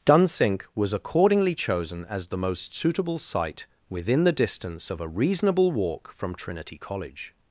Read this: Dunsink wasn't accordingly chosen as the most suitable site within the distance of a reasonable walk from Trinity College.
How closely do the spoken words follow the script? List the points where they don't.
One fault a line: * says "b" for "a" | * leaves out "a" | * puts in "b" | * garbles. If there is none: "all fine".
* says "was" for "wasn't"